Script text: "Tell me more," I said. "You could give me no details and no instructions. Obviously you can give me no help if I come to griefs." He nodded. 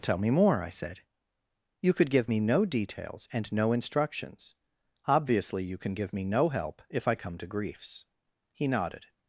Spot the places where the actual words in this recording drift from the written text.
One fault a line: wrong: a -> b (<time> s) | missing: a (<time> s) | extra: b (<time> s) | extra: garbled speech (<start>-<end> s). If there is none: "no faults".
no faults